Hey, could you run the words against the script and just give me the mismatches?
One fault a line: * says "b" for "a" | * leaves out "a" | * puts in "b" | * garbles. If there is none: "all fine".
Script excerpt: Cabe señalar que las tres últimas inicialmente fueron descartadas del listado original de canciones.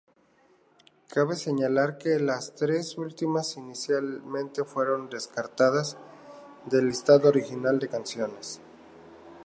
all fine